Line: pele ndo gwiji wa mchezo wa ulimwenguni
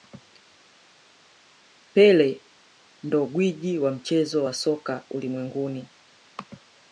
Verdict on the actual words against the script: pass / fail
fail